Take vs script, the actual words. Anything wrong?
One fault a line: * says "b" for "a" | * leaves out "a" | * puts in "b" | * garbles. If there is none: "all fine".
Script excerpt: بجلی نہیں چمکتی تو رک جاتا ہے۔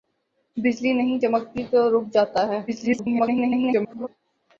* garbles